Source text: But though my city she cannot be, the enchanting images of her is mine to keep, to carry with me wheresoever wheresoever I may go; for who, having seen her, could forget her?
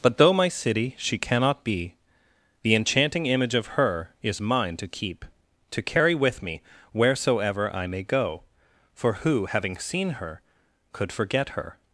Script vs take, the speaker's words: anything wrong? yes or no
yes